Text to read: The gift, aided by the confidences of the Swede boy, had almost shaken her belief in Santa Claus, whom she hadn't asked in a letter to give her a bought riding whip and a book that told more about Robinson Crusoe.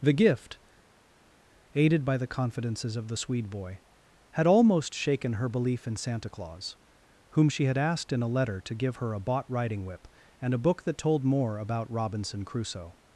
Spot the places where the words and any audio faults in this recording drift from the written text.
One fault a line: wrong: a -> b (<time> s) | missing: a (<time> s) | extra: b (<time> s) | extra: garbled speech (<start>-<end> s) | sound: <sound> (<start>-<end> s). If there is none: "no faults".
wrong: hadn't -> had (7.6 s)